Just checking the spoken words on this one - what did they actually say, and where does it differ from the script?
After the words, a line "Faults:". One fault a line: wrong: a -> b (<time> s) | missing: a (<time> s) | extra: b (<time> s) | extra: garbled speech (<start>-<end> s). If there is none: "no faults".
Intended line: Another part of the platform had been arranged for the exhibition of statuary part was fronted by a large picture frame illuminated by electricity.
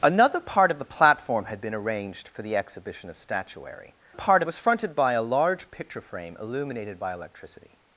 Another part of the platform had been arranged for the exhibition of statuary part was fronted by a large picture frame illuminated by electricity.
Faults:
no faults